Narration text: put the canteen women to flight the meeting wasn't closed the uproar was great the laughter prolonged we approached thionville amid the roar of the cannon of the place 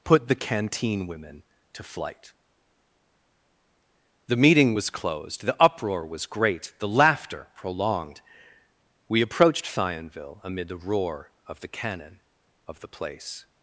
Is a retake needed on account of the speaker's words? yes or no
yes